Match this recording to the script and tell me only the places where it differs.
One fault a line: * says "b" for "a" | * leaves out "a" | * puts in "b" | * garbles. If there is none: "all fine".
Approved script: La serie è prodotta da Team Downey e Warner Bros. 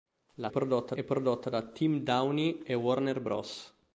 * says "prodotta" for "serie"